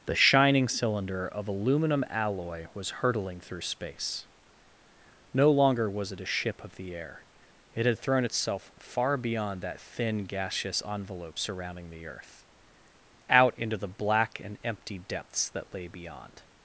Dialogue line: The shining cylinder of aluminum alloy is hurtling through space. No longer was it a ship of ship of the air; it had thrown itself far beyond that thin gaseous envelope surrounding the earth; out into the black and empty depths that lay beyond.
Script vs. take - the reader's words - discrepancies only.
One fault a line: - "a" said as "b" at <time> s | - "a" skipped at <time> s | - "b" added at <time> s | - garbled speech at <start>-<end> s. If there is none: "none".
- "is" said as "was" at 2.7 s
- "ship of" skipped at 6.8 s